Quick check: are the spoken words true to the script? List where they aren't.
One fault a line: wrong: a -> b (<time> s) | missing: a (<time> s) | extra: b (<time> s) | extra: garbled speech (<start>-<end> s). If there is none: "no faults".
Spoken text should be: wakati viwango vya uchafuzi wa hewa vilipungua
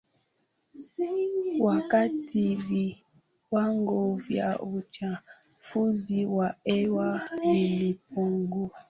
no faults